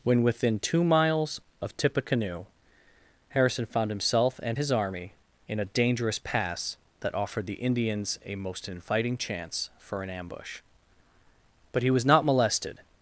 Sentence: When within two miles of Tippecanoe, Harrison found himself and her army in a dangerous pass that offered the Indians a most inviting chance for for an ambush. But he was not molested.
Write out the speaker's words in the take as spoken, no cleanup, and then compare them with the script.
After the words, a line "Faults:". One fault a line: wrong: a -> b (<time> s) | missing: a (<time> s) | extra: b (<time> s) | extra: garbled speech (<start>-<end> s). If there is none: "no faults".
When within two miles of Tippecanoe, Harrison found himself and his army in a dangerous pass that offered the Indians a most inviting chance for an ambush. But he was not molested.
Faults:
wrong: her -> his (4.6 s)
missing: for (10.0 s)